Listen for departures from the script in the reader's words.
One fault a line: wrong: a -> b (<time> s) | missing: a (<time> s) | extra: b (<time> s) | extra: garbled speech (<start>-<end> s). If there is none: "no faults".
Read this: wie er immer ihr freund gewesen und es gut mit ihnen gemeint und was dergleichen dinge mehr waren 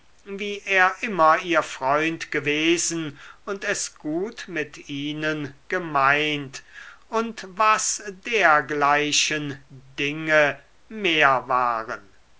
no faults